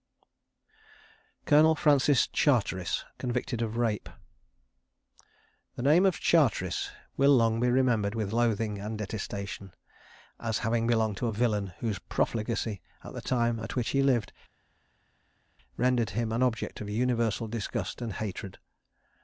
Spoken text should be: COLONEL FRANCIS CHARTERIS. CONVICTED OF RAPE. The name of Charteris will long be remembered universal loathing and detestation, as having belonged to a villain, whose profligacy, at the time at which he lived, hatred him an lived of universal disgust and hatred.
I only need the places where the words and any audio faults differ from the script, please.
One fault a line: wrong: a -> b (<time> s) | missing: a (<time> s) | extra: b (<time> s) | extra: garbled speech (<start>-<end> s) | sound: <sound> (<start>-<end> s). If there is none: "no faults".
wrong: universal -> with (8.2 s)
wrong: hatred -> rendered (15.7 s)
wrong: lived -> object (16.4 s)